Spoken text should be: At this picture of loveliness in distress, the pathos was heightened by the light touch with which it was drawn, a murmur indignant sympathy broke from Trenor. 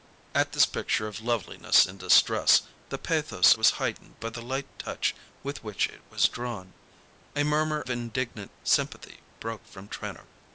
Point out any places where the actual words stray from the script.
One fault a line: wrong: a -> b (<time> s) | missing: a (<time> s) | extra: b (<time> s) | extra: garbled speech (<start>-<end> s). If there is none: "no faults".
no faults